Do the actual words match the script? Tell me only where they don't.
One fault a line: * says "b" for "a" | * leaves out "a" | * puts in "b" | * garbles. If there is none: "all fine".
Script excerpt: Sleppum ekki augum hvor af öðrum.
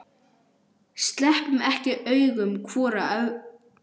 all fine